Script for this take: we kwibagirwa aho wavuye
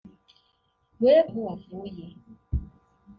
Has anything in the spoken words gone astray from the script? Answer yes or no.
yes